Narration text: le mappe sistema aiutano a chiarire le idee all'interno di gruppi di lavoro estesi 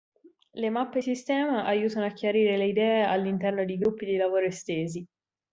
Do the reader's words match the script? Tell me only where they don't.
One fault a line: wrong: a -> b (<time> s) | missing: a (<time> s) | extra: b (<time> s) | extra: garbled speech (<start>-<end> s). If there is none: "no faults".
no faults